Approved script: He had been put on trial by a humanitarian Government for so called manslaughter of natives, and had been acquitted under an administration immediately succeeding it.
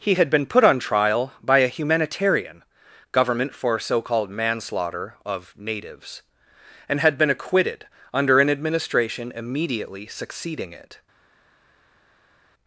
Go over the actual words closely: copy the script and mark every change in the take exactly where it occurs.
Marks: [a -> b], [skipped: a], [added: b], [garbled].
He had been put on trial by a humanitarian Government for so called manslaughter of natives, and had been acquitted under an administration immediately succeeding it.